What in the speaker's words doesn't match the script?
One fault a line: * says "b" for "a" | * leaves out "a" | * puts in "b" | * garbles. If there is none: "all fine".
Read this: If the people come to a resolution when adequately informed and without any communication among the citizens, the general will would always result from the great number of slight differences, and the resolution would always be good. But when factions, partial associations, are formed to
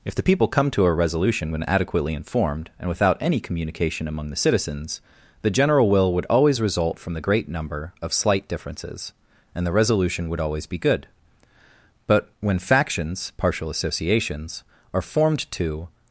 all fine